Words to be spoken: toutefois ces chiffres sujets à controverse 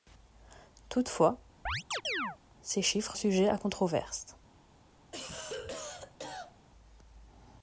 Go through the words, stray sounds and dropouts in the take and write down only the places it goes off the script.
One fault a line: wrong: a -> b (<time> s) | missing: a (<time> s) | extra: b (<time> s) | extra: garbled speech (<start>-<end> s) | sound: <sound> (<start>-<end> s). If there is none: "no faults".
sound: chirp (1.7-2.4 s)
sound: cough (5.1-6.7 s)